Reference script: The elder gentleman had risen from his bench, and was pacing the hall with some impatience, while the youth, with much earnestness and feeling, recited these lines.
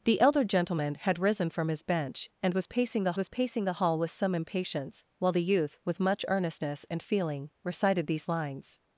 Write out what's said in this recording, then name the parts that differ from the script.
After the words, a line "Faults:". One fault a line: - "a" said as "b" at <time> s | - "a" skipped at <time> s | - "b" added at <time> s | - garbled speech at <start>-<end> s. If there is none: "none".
The elder gentleman had risen from his bench, and was pacing the was pacing the hall with some impatience, while the youth, with much earnestness and feeling, recited these lines.
Faults:
- "was pacing the" added at 3.2 s